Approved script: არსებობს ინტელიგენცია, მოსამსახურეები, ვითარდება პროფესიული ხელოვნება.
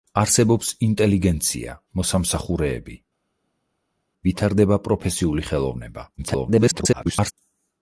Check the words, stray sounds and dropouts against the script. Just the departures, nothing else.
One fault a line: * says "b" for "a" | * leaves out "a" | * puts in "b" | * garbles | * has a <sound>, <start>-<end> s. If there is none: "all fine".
* garbles